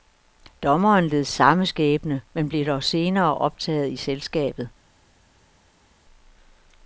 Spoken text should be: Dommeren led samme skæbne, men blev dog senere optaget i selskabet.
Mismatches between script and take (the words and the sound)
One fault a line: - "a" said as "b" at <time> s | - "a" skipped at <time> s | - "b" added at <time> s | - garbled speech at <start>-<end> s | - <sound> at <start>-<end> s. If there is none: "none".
none